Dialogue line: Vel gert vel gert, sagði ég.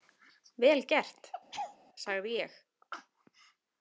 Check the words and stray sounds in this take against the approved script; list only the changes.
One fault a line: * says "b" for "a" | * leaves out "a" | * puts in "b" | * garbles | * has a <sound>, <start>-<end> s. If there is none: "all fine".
* leaves out "vel gert"
* has a laugh, 1.5-1.8 s